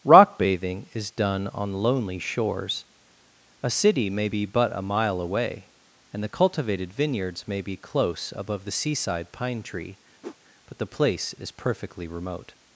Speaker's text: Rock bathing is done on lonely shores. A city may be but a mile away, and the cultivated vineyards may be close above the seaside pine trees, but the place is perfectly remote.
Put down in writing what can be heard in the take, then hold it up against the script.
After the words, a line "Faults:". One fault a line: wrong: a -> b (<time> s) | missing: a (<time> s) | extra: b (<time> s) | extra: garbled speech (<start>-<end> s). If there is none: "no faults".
Rock bathing is done on lonely shores. A city may be but a mile away, and the cultivated vineyards may be close above the seaside pine tree, but the place is perfectly remote.
Faults:
wrong: trees -> tree (9.6 s)